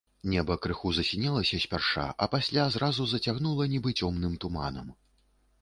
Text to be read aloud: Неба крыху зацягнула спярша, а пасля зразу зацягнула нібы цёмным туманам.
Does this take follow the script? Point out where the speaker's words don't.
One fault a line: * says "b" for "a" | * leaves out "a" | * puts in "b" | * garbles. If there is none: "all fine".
* says "засінелася" for "зацягнула"